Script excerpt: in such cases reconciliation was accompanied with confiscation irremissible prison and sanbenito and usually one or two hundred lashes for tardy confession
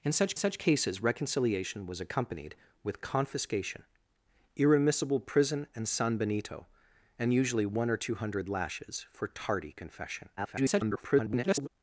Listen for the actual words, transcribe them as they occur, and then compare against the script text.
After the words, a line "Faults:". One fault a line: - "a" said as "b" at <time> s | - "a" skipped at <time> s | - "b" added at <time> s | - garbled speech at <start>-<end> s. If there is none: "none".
in such such cases reconciliation was accompanied with confiscation irremissible prison and sanbenito and usually one or two hundred lashes for tardy confession [garbled]
Faults:
- "such" added at 0.3 s
- garbled speech at 10.4-11.7 s